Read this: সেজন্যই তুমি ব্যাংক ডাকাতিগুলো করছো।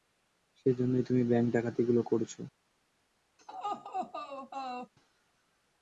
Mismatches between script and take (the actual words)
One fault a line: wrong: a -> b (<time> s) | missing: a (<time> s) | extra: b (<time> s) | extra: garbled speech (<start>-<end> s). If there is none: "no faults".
no faults